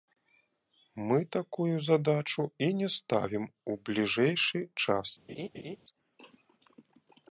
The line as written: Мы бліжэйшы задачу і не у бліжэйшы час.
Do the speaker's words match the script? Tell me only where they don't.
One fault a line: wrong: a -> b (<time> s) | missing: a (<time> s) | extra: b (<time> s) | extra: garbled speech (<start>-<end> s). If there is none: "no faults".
wrong: бліжэйшы -> такую (1.4 s)
extra: ставім (3.0 s)